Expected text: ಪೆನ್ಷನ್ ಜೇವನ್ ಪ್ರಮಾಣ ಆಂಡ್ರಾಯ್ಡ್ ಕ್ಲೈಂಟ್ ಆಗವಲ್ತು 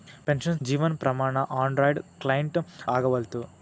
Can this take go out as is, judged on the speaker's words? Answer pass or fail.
pass